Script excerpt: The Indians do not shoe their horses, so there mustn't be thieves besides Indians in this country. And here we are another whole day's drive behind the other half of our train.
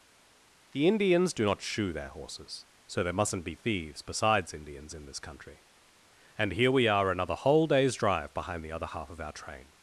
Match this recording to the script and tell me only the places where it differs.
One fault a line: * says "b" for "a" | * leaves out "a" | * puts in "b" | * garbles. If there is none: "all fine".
all fine